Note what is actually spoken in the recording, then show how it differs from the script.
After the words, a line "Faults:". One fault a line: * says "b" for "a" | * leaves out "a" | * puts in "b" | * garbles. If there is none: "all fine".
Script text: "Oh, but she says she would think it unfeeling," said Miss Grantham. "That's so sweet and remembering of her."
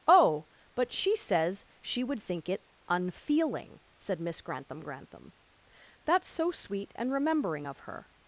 "Oh, but she says she would think it unfeeling," said Miss Grantham Grantham. "That's so sweet and remembering of her."
Faults:
* puts in "Grantham"